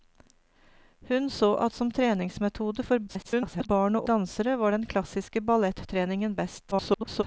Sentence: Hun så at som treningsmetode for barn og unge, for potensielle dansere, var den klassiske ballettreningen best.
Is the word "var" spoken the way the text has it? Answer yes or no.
yes